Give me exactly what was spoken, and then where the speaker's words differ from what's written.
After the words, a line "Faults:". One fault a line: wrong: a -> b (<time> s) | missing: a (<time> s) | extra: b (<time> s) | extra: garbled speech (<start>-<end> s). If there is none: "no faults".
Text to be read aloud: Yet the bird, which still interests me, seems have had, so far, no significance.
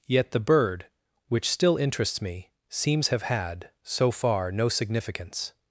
Yet the bird, which still interests me, seems have had, so far, no significance.
Faults:
no faults